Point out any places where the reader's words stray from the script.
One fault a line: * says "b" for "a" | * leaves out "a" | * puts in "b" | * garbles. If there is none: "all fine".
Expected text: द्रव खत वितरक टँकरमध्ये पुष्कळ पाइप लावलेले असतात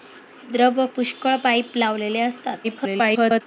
* leaves out "खत वितरक टँकरमध्ये"
* garbles